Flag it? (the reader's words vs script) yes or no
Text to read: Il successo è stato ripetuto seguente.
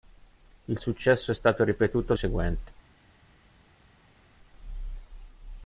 no